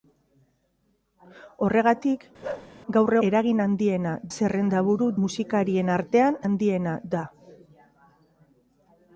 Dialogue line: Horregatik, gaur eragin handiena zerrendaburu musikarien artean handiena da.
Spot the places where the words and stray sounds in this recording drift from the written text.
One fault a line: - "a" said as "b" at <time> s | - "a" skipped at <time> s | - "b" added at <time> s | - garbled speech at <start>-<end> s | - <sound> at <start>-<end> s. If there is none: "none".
- bark at 2.4-2.7 s